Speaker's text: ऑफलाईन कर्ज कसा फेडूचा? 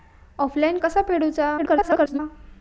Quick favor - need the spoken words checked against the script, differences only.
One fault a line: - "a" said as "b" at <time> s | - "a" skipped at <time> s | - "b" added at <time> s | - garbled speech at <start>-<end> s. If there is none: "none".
- "कर्ज" skipped at 0.8 s
- garbled speech at 1.6-2.2 s